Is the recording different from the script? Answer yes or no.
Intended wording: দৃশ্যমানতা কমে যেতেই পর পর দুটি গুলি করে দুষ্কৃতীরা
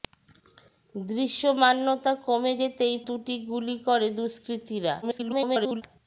yes